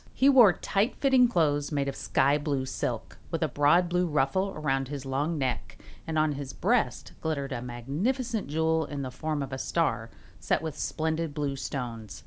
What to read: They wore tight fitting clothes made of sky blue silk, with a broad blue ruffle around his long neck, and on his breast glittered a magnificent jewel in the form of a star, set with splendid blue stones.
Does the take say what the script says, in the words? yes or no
no